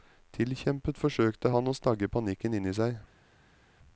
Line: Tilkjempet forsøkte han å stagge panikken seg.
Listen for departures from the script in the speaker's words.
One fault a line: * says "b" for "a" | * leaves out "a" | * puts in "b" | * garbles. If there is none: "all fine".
* puts in "inni"